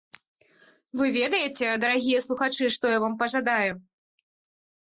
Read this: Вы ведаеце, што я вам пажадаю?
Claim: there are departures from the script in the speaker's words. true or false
true